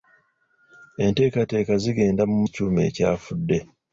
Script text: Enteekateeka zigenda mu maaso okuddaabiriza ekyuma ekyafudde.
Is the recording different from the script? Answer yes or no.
yes